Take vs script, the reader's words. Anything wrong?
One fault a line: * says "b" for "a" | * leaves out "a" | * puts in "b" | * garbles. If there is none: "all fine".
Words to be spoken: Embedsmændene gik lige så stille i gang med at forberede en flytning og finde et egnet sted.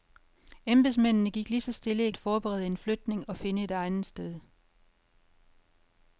* leaves out "gang med"